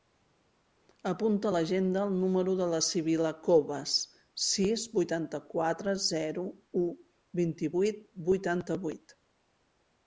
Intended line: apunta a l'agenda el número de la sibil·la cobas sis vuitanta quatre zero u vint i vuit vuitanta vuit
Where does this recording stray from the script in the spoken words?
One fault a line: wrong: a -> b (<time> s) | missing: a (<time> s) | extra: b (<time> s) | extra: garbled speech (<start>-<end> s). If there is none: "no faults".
no faults